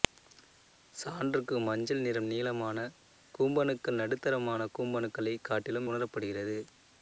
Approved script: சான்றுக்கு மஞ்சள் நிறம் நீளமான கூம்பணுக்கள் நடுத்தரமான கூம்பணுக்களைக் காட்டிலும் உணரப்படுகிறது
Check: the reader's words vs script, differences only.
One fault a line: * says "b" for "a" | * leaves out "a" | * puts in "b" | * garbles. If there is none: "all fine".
all fine